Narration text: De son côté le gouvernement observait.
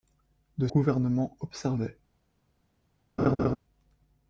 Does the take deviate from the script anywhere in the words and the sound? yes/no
yes